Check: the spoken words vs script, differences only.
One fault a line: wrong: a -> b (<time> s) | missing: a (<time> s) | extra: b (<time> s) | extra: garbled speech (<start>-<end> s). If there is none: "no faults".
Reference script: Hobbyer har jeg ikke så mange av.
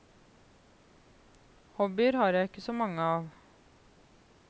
no faults